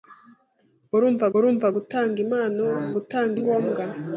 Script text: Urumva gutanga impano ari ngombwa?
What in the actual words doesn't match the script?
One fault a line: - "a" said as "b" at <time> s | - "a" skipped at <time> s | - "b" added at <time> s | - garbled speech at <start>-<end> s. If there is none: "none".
- "urumva" added at 1.4 s
- "ari" said as "gutanga" at 3.0 s